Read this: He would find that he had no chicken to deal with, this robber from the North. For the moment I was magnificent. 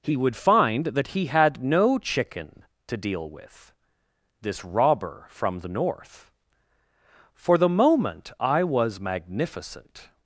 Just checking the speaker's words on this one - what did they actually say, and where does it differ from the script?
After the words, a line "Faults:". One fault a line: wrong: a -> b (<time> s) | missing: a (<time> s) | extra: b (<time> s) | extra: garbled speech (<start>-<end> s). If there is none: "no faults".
He would find that he had no chicken to deal with, this robber from the North. For the moment I was magnificent.
Faults:
no faults